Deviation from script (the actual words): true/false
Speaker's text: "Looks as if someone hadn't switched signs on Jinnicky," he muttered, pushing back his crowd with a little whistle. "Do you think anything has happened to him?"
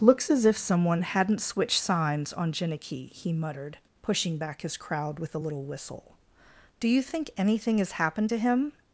false